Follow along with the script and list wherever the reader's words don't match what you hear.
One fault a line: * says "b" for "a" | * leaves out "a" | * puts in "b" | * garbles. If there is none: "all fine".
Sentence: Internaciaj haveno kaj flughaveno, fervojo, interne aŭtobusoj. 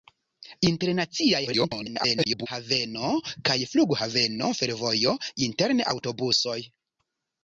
* garbles